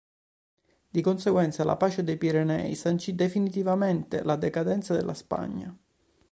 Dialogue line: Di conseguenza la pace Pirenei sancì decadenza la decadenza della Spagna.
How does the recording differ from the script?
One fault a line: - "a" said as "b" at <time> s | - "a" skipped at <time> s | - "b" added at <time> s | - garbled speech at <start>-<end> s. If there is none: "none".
- "dei" added at 2.0 s
- "decadenza" said as "definitivamente" at 3.2 s